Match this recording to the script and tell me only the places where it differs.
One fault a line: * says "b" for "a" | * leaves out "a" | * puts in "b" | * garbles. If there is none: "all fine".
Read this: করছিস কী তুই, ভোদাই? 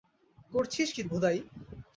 * leaves out "তুই"